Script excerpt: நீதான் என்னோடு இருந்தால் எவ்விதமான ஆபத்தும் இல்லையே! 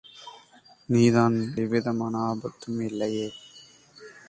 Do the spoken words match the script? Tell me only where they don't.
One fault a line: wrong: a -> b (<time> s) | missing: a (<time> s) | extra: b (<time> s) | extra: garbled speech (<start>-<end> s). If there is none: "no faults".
missing: என்னோடு இருந்தால் (1.4 s)